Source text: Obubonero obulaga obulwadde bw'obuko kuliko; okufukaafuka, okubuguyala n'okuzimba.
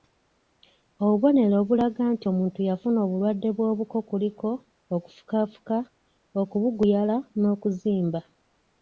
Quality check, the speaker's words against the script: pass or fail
fail